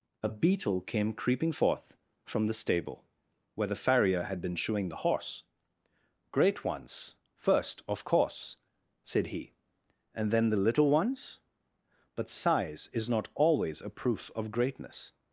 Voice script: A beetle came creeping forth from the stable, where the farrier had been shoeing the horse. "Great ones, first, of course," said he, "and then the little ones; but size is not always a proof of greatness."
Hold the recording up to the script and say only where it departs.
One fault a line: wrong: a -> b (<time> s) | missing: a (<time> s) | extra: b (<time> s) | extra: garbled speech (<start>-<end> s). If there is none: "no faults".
no faults